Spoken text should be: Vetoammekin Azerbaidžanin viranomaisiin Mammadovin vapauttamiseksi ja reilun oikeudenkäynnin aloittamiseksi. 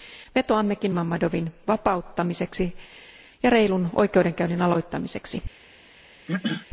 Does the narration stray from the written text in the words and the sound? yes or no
yes